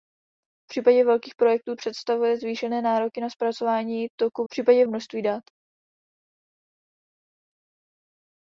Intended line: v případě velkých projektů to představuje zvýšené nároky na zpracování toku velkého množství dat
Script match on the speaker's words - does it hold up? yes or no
no